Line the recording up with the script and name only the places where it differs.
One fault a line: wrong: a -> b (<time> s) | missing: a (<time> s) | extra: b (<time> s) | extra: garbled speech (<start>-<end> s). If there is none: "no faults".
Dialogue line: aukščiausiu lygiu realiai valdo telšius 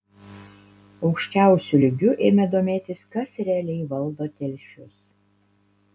extra: ėmė domėtis kas (2.3 s)